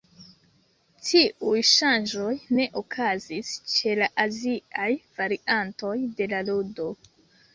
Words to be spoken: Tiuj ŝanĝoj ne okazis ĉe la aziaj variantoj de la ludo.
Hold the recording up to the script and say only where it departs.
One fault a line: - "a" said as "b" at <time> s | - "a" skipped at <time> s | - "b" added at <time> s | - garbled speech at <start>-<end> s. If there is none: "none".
none